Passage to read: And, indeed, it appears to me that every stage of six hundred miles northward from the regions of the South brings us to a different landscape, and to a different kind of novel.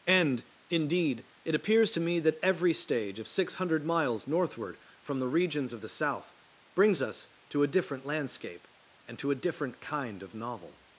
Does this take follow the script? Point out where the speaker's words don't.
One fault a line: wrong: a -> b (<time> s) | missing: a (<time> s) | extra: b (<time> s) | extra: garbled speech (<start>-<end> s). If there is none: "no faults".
no faults